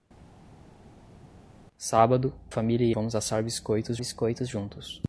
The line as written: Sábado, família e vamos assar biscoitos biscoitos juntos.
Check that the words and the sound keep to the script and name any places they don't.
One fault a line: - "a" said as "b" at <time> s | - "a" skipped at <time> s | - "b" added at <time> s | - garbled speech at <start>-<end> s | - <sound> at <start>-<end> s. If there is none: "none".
none